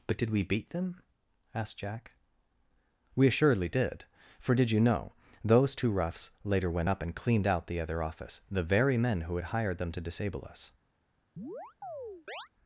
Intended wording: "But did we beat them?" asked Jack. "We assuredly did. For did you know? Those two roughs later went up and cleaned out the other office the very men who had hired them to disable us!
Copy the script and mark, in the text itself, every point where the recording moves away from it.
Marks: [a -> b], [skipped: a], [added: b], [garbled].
"But did we beat them?" asked Jack. "We assuredly did. For did you know? Those two roughs later went up and cleaned out the other office the very men who had hired them to disable us!